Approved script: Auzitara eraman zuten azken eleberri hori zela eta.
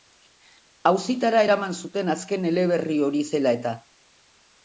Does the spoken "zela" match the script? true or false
true